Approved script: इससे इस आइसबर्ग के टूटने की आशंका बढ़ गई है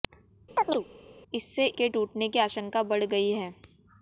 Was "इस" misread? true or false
true